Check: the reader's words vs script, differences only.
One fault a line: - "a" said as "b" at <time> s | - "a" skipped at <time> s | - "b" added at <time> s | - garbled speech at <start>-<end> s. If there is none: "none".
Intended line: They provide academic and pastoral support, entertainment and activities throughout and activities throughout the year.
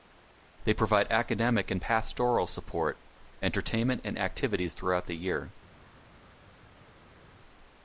- "and activities throughout" skipped at 5.1 s